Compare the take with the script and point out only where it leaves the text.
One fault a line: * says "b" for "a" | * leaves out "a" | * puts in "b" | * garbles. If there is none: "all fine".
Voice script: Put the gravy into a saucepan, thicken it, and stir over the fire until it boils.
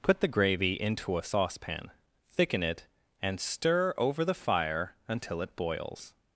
all fine